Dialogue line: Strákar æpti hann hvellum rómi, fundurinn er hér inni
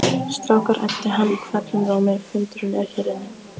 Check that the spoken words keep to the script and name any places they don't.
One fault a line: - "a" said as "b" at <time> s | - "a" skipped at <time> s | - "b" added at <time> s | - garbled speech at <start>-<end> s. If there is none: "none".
none